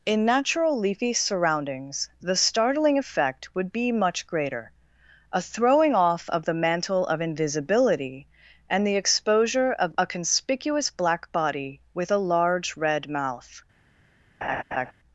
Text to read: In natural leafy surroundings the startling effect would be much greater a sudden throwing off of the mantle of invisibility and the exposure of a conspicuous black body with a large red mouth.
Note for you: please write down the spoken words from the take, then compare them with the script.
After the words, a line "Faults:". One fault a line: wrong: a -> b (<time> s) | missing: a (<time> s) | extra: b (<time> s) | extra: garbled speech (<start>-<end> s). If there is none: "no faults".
In natural leafy surroundings the startling effect would be much greater a throwing off of the mantle of invisibility and the exposure of a conspicuous black body with a large red mouth.
Faults:
missing: sudden (5.4 s)